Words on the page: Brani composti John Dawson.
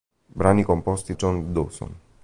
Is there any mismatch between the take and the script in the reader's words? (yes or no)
no